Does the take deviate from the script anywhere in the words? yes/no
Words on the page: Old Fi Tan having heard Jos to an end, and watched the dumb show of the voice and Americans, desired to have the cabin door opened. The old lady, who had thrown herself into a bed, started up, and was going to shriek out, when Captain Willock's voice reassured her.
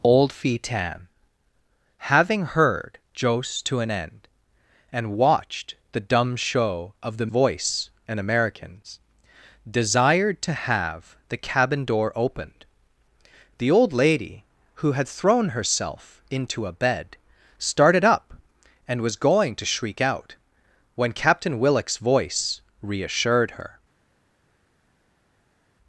no